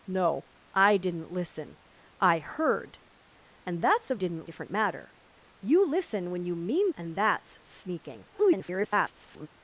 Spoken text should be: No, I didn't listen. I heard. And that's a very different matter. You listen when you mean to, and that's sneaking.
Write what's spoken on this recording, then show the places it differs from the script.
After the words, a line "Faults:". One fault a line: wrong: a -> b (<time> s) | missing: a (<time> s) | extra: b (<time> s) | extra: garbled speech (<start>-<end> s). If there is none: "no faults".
No, I didn't listen. I heard. And that's a didn't different matter. You listen when you mean and that's sneaking. [garbled]
Faults:
wrong: very -> didn't (4.1 s)
missing: to (6.9 s)
extra: garbled speech (8.3-9.5 s)